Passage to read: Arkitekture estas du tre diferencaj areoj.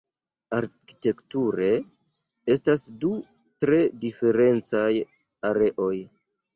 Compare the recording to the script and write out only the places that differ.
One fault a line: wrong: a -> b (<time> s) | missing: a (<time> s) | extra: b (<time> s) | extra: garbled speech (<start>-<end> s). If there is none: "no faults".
no faults